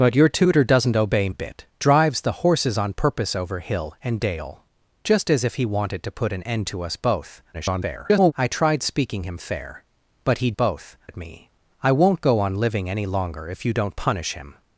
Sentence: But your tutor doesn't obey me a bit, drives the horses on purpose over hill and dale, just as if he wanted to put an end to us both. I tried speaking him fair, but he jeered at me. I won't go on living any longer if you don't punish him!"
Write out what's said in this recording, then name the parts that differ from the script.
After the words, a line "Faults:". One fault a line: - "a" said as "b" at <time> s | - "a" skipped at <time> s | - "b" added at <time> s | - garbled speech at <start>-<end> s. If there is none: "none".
But your tutor doesn't obey a bit, drives the horses on purpose over hill and dale, just as if he wanted to put an end to us both. [garbled] I tried speaking him fair, but he both at me. I won't go on living any longer if you don't punish him!"
Faults:
- "me" skipped at 1.3 s
- garbled speech at 7.5-8.3 s
- "jeered" said as "both" at 10.5 s